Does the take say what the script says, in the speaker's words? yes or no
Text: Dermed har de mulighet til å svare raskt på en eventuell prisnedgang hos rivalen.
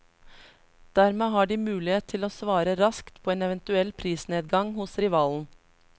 yes